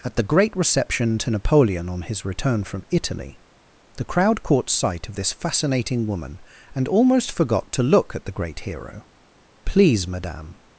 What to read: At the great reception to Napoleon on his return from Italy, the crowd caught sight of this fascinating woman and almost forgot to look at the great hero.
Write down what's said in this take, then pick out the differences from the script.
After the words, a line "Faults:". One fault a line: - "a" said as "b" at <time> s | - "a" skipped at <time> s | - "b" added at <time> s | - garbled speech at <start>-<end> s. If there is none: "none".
At the great reception to Napoleon on his return from Italy, the crowd caught sight of this fascinating woman and almost forgot to look at the great hero. "Please, Madame
Faults:
- "Please Madame" added at 9.7 s